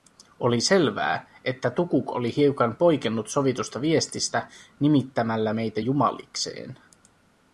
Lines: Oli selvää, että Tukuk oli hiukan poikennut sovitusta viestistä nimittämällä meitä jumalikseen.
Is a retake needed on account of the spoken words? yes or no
no